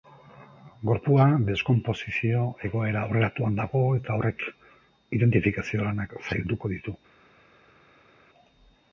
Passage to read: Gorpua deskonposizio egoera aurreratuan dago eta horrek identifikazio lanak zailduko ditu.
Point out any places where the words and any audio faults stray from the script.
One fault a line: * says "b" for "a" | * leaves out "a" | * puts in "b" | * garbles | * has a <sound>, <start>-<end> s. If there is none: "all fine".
all fine